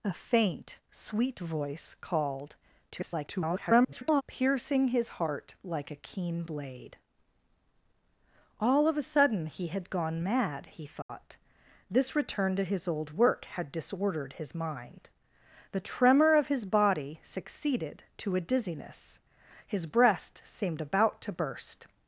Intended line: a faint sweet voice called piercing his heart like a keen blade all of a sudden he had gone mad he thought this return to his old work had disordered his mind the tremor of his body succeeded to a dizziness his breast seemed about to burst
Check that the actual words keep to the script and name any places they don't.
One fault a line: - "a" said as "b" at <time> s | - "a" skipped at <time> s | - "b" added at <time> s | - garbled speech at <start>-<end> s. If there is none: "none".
- garbled speech at 2.9-4.2 s